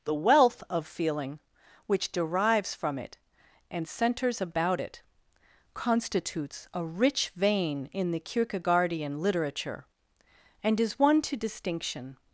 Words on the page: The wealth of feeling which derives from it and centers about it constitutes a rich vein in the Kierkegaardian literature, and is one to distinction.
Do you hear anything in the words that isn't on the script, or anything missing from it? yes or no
no